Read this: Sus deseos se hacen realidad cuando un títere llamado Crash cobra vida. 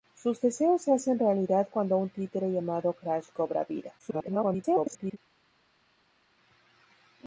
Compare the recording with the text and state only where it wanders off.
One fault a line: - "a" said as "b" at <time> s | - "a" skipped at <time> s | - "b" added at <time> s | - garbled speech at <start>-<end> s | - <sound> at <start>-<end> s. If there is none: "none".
- garbled speech at 4.0-5.2 s